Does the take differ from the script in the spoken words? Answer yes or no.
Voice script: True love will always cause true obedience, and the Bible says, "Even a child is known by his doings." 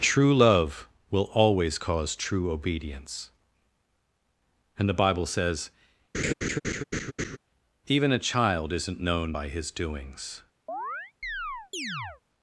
yes